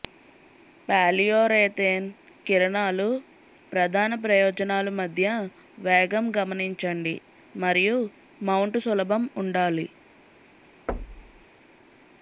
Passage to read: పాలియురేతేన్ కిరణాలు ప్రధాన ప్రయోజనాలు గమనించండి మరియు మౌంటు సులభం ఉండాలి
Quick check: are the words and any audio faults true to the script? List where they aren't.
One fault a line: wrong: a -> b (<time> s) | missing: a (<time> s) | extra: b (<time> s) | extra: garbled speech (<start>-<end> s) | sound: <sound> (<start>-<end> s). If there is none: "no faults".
extra: మధ్య వేగం (5.0 s)
sound: thud (10.9-11.5 s)